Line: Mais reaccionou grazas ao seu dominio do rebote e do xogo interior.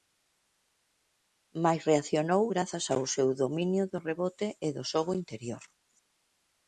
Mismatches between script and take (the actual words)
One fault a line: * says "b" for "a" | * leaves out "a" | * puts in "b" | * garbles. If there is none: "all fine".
all fine